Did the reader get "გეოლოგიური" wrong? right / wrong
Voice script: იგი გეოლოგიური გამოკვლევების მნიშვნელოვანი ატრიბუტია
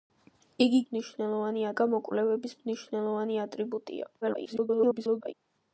wrong